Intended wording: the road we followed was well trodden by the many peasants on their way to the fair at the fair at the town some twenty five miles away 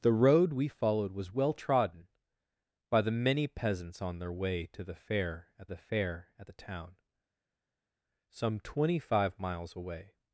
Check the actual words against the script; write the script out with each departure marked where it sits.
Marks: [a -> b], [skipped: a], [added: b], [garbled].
the road we followed was well trodden by the many peasants on their way to the fair at the fair at the town some twenty five miles away